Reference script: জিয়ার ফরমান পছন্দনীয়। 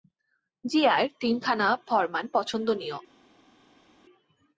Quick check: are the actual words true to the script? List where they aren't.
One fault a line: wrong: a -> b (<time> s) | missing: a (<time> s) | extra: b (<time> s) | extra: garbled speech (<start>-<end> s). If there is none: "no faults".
extra: তিনখানা (1.2 s)